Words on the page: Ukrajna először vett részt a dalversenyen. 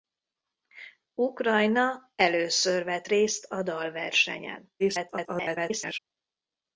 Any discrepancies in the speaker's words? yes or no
yes